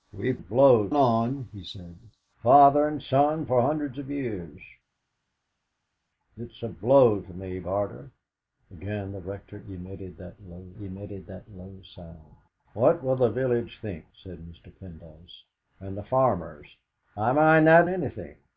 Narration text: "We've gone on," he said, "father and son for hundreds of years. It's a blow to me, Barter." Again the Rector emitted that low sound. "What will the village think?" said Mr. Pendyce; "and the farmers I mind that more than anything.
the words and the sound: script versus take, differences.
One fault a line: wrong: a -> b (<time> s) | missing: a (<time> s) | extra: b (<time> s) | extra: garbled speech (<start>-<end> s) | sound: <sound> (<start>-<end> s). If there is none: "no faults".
wrong: gone -> blow (0.4 s)
extra: emitted that low (10.8 s)
missing: more than (17.9 s)